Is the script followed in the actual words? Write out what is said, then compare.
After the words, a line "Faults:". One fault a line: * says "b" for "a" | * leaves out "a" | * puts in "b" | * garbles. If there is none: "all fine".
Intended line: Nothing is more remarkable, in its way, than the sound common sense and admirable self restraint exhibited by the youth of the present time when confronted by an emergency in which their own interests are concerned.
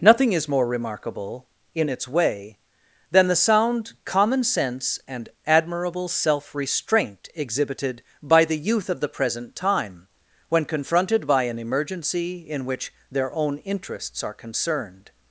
Nothing is more remarkable, in its way, than the sound common sense and admirable self restraint exhibited by the youth of the present time when confronted by an emergency in which their own interests are concerned.
Faults:
all fine